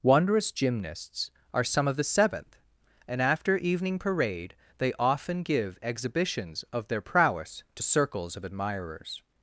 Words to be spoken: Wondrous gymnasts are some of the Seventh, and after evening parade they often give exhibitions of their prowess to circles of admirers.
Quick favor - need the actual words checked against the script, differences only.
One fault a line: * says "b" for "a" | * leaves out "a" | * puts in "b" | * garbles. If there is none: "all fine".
all fine